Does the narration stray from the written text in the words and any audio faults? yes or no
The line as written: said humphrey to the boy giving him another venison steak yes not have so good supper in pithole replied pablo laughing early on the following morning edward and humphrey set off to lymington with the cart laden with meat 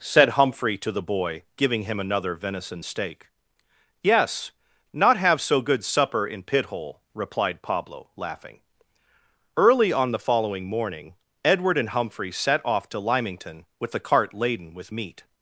no